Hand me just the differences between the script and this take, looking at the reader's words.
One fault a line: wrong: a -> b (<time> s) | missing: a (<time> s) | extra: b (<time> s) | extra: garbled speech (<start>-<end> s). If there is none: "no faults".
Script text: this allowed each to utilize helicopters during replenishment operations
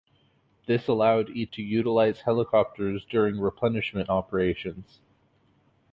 no faults